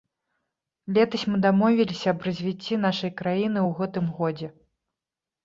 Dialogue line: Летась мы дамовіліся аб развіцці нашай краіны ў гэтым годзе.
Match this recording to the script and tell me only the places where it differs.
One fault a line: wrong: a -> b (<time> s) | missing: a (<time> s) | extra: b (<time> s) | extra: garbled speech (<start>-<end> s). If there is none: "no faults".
no faults